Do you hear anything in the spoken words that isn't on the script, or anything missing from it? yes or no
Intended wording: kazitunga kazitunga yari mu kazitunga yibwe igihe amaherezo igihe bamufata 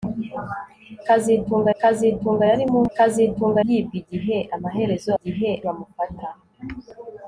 no